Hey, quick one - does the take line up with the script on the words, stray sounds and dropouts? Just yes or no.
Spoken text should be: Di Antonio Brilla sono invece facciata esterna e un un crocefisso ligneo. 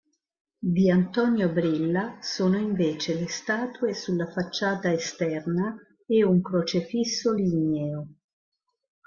no